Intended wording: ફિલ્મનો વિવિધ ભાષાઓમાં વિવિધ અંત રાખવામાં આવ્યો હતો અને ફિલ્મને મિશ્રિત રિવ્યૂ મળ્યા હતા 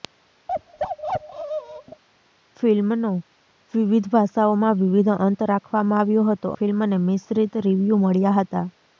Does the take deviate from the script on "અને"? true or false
true